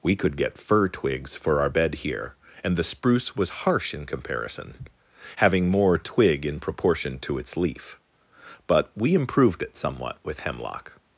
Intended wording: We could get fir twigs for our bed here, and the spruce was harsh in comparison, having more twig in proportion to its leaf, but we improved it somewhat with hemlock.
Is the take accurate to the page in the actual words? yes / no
yes